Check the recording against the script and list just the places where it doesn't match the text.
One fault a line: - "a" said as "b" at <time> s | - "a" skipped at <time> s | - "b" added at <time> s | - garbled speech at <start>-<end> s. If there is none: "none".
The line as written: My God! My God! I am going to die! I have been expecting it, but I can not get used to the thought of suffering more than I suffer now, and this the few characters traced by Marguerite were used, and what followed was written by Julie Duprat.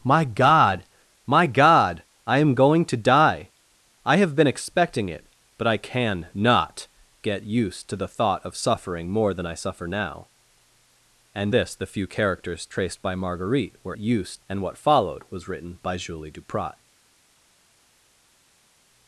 none